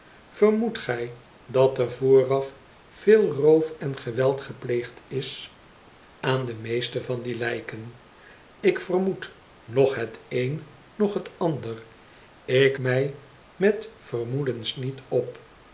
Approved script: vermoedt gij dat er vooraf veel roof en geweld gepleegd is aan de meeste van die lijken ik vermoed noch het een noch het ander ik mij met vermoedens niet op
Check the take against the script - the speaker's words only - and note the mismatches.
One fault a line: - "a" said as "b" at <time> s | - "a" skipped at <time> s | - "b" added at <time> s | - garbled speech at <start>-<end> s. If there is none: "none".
none